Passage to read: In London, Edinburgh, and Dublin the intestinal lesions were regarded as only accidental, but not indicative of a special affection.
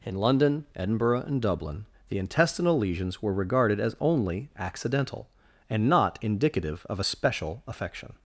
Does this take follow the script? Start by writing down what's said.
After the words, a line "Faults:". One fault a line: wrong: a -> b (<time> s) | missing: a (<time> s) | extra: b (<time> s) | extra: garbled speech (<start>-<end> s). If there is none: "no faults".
In London, Edinburgh, and Dublin the intestinal lesions were regarded as only accidental, and not indicative of a special affection.
Faults:
wrong: but -> and (5.7 s)